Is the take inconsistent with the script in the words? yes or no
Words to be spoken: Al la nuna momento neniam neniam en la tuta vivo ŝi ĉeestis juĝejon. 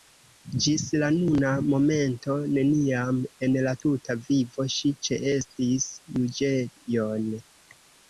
yes